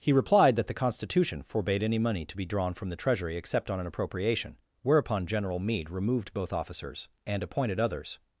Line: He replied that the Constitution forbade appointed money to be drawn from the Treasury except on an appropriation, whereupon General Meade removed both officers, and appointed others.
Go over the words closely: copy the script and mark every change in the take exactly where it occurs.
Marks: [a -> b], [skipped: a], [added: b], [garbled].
He replied that the Constitution forbade [appointed -> any] money to be drawn from the Treasury except on an appropriation, whereupon General Meade removed both officers, and appointed others.